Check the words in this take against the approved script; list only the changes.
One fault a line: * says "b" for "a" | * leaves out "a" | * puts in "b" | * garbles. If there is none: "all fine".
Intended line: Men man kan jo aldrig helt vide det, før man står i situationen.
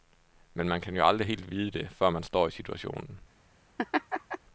all fine